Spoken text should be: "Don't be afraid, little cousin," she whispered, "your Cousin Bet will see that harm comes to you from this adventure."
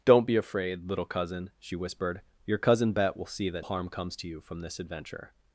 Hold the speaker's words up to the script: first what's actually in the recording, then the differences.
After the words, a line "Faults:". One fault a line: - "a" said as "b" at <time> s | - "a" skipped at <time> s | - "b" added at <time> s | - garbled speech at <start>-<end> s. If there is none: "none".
"Don't be afraid, little cousin," she whispered, "your Cousin Bet will see that harm comes to you from this adventure."
Faults:
none